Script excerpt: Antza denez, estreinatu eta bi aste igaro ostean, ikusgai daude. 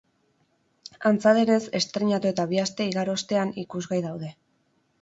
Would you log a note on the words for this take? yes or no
no